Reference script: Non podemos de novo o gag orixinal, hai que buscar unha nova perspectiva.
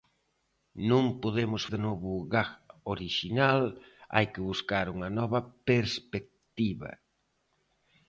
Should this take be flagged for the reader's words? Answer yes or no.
no